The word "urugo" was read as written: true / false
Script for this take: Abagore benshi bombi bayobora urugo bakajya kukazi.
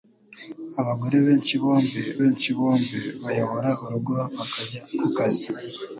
true